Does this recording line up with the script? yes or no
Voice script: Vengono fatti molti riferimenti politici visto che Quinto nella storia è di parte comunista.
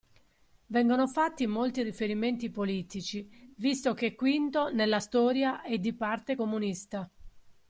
yes